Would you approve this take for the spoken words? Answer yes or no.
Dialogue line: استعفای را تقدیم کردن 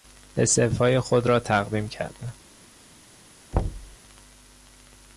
no